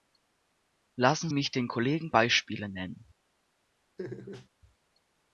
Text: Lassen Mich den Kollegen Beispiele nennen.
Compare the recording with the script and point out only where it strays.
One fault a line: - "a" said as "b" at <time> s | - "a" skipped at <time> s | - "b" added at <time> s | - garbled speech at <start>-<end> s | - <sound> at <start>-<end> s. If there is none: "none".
- laugh at 4.0-4.5 s